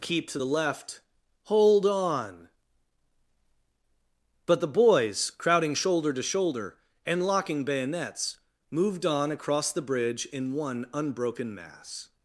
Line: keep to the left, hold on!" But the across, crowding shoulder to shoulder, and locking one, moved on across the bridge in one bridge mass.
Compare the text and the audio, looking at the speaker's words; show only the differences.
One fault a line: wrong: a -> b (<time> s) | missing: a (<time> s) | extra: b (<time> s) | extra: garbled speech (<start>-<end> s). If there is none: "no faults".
wrong: across -> boys (4.7 s)
wrong: one -> bayonets (7.6 s)
wrong: bridge -> unbroken (10.9 s)